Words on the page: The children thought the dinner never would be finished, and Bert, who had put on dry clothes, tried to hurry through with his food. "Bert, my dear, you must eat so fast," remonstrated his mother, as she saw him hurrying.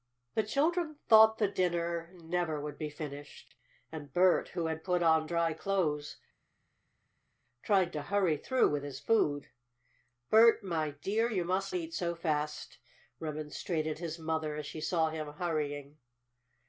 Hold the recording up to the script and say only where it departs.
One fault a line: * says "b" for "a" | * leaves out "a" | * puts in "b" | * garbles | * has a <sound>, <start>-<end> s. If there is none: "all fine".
all fine